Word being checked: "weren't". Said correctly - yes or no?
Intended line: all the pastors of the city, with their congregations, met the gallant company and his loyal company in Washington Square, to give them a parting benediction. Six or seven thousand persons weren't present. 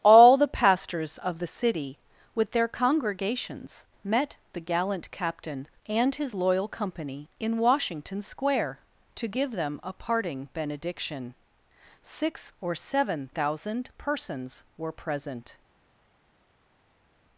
no